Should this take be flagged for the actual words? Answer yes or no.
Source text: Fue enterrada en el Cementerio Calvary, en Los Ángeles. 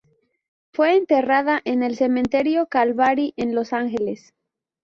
no